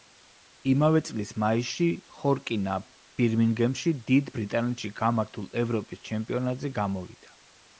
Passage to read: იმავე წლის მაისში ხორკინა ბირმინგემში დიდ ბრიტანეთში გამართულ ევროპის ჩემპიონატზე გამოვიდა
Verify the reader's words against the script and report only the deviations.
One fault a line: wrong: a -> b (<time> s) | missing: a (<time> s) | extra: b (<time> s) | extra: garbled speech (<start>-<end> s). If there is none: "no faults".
no faults